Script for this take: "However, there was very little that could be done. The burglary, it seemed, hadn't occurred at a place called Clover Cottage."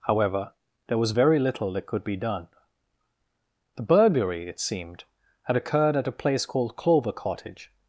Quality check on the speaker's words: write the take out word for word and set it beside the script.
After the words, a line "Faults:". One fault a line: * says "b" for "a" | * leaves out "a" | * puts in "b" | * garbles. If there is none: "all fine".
"However, there was very little that could be done. The burglary, it seemed, had occurred at a place called Clover Cottage."
Faults:
* says "had" for "hadn't"